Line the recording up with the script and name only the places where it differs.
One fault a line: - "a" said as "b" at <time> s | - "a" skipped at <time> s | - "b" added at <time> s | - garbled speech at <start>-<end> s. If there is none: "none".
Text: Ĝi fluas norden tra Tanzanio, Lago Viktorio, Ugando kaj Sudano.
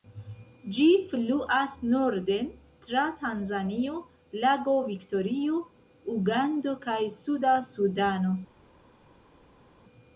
- "Suda" added at 7.2 s